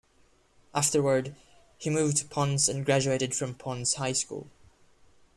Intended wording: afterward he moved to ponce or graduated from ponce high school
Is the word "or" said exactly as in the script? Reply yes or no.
no